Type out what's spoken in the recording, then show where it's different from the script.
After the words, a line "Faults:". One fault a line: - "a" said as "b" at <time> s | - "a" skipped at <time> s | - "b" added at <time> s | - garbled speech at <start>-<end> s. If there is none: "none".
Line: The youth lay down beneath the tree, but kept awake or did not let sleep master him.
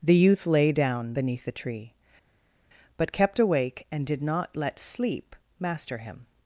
The youth lay down beneath the tree, but kept awake and did not let sleep master him.
Faults:
- "or" said as "and" at 3.9 s